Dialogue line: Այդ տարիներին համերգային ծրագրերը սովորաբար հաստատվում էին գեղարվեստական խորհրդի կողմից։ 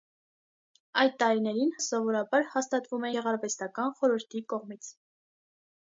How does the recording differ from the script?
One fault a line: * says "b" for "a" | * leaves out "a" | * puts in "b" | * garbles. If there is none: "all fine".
* leaves out "համերգային ծրագրերը"
* leaves out "էին"